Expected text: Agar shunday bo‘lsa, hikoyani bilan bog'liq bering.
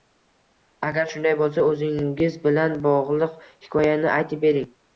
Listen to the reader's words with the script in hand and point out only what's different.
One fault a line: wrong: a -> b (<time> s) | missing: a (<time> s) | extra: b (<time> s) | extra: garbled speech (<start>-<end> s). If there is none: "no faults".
wrong: hikoyani -> o'zingiz (1.7 s)
extra: hikoyani aytib (3.5 s)